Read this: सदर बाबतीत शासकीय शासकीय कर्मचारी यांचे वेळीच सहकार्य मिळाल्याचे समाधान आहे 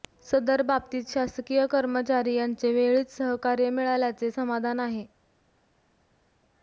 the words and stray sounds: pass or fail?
fail